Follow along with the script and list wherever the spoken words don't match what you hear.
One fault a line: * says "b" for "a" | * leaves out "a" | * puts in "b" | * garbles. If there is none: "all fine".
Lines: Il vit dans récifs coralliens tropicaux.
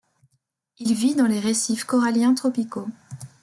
* puts in "les"